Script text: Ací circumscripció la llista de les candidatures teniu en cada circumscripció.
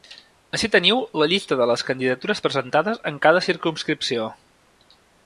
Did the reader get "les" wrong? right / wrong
right